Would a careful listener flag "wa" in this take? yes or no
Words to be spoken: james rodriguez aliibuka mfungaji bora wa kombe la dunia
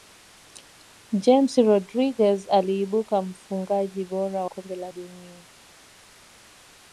yes